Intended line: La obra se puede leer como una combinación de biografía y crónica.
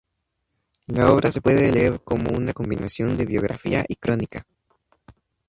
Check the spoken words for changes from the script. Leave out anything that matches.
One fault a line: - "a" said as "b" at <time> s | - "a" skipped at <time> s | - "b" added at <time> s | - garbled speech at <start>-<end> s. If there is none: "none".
none